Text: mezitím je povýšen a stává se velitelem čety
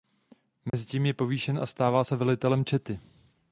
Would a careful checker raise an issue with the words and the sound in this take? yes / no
yes